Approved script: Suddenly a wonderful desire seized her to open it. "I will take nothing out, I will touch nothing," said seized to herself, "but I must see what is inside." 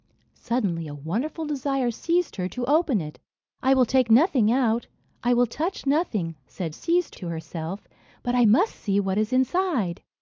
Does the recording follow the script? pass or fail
pass